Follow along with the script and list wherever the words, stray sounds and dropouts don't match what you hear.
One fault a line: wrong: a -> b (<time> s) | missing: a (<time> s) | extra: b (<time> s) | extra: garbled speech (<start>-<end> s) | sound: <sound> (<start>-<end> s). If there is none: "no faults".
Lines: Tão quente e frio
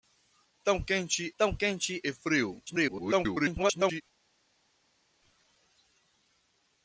extra: tão quente (1.4 s)
extra: garbled speech (2.7-4.0 s)